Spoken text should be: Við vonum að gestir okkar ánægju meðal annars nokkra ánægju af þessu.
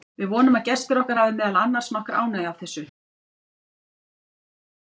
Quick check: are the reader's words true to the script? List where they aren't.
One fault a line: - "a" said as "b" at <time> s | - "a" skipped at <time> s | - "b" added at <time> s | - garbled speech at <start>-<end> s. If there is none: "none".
- "ánægju" said as "hafi" at 1.2 s